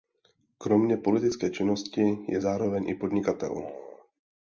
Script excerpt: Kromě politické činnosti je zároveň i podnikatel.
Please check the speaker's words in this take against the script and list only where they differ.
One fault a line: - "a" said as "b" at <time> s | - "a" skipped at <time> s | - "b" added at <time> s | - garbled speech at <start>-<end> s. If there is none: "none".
none